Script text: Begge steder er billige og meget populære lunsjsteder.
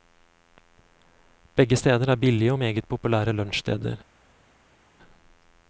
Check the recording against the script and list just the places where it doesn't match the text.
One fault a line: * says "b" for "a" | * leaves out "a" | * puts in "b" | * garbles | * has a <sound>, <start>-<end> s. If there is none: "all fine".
all fine